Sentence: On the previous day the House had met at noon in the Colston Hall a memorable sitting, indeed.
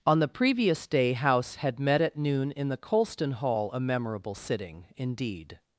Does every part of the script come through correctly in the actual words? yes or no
no